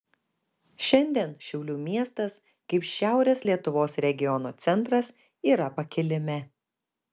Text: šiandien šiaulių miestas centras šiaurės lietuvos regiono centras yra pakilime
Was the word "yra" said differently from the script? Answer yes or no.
no